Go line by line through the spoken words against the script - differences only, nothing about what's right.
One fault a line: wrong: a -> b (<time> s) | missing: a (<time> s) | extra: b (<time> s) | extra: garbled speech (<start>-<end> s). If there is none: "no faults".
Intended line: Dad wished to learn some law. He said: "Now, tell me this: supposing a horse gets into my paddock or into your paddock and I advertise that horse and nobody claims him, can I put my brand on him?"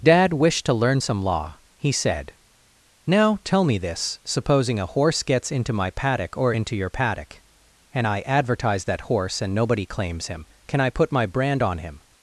no faults